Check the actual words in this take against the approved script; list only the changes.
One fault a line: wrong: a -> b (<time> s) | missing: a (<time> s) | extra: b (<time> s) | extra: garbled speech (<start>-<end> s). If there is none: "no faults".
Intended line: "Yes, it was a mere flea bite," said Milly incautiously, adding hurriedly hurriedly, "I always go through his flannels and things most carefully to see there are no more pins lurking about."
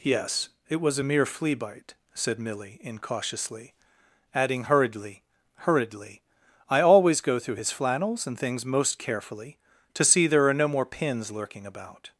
no faults